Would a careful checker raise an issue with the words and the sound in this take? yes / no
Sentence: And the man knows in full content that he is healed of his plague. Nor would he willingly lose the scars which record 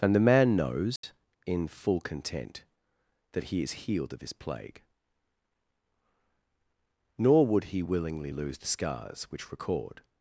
yes